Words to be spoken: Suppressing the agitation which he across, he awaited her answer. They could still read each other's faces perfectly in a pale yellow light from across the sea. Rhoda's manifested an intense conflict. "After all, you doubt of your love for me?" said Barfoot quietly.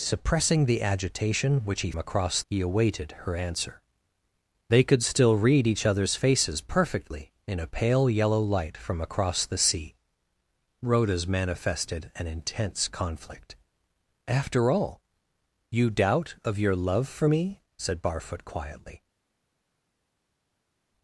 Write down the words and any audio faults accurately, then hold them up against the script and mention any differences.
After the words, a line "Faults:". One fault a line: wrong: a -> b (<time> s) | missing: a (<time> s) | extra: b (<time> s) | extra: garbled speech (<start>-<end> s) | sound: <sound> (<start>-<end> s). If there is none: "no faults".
Suppressing the agitation which he across, he awaited her answer. They could still read each other's faces perfectly in a pale yellow light from across the sea. Rhoda's manifested an intense conflict. "After all, you doubt of your love for me?" said Barfoot quietly.
Faults:
no faults